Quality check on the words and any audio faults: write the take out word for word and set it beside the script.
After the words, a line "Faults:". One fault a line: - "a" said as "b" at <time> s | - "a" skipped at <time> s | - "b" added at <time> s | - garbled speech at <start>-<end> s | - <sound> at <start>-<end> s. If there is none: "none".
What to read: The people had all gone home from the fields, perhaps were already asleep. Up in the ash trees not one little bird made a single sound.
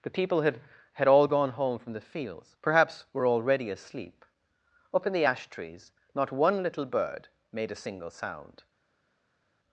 The people had had all gone home from the fields, perhaps were already asleep. Up in the ash trees not one little bird made a single sound.
Faults:
- "had" added at 0.9 s